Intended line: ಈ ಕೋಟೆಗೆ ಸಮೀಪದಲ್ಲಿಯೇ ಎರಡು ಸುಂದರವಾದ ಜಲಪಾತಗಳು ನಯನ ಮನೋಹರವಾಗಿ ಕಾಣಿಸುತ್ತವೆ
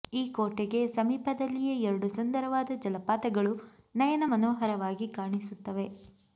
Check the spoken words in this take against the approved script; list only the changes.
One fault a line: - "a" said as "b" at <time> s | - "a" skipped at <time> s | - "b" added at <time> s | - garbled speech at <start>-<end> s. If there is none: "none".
none